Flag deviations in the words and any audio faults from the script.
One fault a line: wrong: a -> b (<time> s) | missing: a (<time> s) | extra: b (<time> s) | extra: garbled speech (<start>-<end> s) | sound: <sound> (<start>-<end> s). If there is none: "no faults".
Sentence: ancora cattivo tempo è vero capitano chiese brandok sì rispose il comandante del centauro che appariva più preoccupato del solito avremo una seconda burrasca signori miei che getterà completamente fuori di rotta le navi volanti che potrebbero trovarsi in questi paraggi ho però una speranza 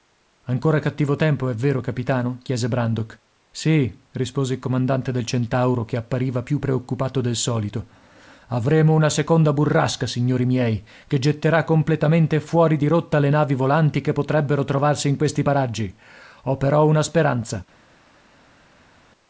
no faults